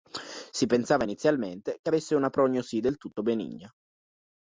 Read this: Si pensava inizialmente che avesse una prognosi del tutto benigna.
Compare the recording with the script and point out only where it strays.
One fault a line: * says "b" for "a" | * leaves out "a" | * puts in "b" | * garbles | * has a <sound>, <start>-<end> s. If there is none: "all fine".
all fine